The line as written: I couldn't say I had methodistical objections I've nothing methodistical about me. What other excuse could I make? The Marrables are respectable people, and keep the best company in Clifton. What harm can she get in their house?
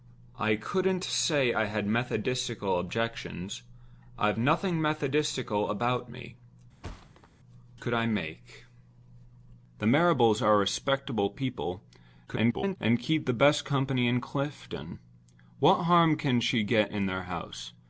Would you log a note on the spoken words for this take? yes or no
yes